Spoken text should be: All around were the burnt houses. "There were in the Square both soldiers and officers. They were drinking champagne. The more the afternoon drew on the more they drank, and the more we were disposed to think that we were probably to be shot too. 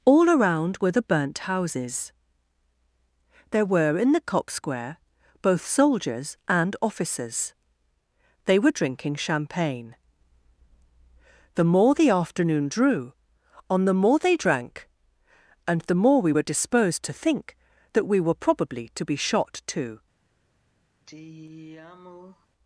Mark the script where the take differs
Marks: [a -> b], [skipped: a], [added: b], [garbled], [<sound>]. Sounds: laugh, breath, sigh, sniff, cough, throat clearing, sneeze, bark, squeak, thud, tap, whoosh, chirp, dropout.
All around were the burnt houses. "There were in the [added: cock] Square both soldiers and officers. They were drinking champagne. The more the afternoon drew on the more they drank, and the more we were disposed to think that we were probably to be shot too. [sigh]